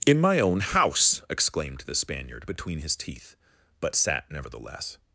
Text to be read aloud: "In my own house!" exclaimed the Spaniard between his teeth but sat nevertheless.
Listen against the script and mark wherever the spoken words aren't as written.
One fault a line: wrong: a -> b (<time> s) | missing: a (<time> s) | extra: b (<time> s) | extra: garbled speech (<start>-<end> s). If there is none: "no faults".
no faults